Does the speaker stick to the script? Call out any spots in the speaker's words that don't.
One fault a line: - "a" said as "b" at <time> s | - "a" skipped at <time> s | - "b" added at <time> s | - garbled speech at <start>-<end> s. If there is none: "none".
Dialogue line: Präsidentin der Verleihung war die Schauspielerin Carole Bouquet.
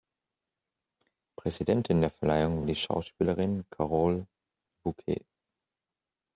- "war" skipped at 2.6 s